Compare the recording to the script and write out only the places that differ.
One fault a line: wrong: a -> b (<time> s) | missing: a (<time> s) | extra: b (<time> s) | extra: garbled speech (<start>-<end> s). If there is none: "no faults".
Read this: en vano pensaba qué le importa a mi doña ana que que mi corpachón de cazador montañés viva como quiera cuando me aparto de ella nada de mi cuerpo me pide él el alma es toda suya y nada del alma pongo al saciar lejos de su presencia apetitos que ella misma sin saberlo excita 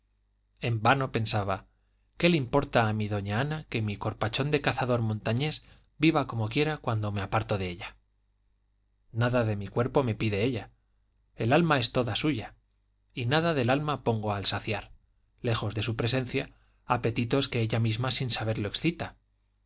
missing: que (3.8 s)
wrong: él -> ella (10.5 s)